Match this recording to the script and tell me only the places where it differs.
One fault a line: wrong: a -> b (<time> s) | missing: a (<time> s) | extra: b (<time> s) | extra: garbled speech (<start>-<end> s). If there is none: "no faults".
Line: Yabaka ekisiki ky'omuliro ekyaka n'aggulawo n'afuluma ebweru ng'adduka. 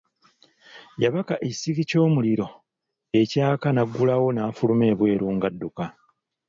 no faults